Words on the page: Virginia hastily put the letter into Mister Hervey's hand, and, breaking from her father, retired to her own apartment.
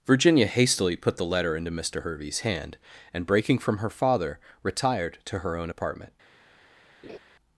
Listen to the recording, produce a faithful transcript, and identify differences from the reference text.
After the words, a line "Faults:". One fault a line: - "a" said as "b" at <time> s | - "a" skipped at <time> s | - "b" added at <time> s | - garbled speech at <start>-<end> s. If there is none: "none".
Virginia hastily put the letter into Mister Hervey's hand, and, breaking from her father, retired to her own apartment.
Faults:
none